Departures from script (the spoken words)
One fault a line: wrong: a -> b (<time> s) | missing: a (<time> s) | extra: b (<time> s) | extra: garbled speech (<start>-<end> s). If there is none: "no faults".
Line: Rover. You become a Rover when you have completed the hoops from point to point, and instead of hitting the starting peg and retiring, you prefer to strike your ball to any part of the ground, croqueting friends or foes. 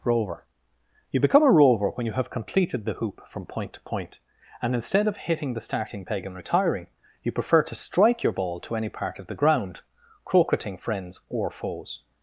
wrong: hoops -> hoop (2.9 s)